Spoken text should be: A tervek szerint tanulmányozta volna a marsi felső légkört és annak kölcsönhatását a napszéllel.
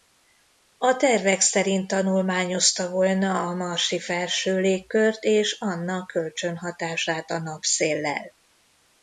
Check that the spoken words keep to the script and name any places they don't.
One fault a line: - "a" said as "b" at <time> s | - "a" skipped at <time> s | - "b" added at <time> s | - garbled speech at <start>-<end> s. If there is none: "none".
none